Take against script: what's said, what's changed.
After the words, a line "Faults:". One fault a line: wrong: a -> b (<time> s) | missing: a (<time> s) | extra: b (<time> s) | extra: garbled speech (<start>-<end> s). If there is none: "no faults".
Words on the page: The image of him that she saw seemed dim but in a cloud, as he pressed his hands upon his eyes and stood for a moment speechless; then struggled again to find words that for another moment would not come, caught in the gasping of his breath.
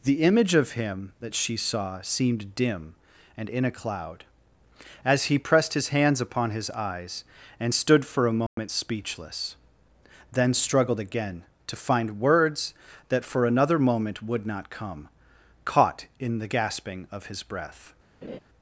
The image of him that she saw seemed dim and in a cloud, as he pressed his hands upon his eyes and stood for a moment speechless; then struggled again to find words that for another moment would not come, caught in the gasping of his breath.
Faults:
wrong: but -> and (3.4 s)